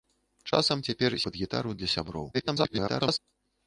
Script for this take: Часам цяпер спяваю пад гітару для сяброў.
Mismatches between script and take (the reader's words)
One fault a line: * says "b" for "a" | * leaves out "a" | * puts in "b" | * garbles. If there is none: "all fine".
* leaves out "спяваю"
* garbles